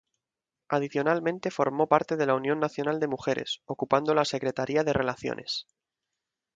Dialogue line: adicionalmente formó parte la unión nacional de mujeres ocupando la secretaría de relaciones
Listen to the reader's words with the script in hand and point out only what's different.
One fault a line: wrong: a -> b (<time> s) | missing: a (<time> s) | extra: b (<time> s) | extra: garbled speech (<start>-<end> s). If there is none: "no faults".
extra: de (2.1 s)